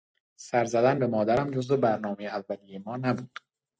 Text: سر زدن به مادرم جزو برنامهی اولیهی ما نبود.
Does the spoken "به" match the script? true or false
true